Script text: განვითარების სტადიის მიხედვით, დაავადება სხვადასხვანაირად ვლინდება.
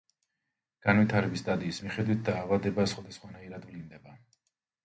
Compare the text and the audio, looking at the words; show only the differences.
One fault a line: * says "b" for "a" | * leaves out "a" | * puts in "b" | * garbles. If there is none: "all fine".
all fine